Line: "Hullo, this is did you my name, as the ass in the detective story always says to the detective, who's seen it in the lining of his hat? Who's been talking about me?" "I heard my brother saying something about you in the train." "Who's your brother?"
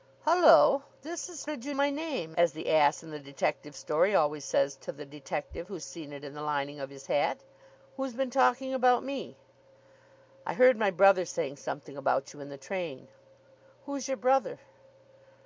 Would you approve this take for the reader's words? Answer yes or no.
yes